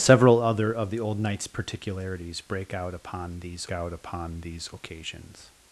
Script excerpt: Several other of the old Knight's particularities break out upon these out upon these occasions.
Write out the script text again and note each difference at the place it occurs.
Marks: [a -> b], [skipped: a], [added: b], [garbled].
Several other of the old Knight's particularities break out upon these out upon these occasions.